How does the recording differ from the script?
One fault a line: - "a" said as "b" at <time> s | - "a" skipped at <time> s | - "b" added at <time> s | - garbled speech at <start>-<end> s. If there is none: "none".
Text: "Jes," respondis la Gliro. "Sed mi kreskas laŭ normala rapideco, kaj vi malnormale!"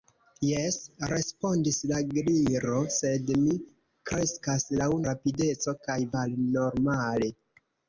- "normala" skipped at 4.9 s
- "vi" skipped at 6.0 s